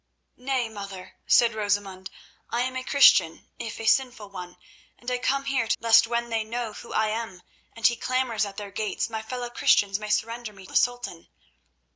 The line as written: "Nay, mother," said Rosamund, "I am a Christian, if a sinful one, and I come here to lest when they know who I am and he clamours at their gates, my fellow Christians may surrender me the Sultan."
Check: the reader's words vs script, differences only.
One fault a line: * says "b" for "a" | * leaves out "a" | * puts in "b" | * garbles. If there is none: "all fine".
all fine